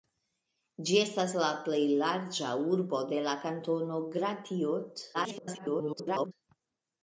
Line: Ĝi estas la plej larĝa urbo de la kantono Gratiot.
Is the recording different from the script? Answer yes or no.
yes